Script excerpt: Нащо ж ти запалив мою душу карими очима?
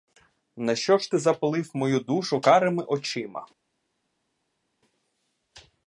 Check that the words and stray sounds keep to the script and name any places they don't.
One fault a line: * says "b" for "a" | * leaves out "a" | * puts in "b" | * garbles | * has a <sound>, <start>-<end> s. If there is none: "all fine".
all fine